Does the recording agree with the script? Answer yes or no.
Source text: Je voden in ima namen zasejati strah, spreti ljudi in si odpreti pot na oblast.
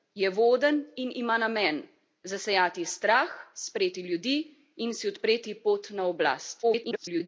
no